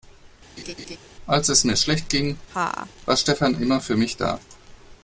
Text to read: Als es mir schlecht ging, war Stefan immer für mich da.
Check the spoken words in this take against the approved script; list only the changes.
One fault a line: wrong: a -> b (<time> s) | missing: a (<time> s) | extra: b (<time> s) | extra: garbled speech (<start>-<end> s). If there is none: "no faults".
no faults